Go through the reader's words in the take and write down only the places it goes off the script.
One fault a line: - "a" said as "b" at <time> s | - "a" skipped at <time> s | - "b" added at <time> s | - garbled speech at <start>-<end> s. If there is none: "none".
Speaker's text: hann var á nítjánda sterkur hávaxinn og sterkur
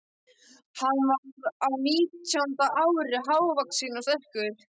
- "sterkur" said as "ári" at 2.9 s